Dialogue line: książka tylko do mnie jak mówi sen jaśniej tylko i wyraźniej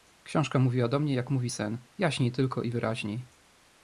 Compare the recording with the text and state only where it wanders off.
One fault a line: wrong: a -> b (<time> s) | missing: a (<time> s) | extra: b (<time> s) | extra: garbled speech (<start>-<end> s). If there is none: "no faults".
wrong: tylko -> mówiła (0.6 s)